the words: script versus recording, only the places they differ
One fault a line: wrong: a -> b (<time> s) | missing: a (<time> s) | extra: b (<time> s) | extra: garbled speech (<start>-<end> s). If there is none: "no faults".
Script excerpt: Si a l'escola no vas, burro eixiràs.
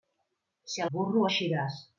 missing: l'escola no vas (0.9 s)